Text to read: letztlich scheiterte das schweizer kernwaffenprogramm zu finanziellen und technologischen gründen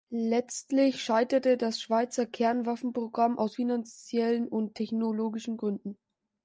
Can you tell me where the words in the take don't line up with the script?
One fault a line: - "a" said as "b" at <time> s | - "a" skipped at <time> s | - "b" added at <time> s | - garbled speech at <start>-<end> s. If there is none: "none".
- "zu" said as "aus" at 3.3 s